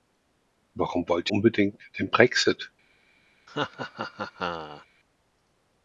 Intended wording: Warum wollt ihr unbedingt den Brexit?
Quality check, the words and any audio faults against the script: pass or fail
fail